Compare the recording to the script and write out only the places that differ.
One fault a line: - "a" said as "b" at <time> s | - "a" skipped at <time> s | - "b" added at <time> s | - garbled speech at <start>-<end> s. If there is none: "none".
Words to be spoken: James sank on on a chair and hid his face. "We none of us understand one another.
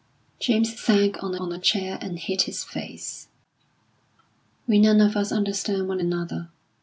none